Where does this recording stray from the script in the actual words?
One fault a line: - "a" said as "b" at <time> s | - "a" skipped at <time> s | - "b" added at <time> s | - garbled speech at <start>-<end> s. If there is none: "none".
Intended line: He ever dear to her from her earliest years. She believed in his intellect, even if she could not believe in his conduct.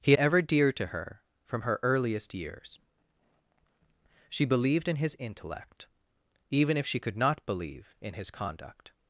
none